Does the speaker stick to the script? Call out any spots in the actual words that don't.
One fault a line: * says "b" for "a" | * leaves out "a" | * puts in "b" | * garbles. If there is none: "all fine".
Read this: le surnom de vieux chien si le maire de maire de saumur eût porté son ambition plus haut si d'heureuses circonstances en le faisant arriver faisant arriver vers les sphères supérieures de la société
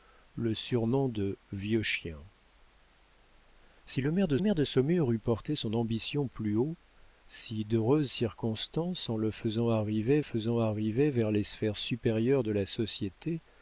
all fine